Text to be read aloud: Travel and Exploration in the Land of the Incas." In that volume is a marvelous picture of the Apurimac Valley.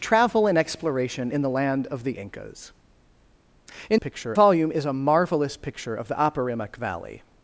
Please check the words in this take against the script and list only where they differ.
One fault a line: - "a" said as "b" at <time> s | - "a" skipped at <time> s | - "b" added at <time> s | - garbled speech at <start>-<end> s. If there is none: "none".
- "that" said as "picture" at 4.0 s